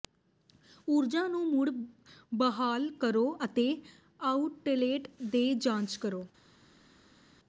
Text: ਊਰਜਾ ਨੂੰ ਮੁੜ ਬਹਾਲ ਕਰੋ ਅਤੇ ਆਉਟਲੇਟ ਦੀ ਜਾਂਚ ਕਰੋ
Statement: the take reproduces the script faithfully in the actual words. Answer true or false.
true